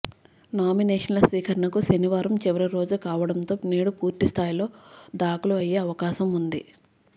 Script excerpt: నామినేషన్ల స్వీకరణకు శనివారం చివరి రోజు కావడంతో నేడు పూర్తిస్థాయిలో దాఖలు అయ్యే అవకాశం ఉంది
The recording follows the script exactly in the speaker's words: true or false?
true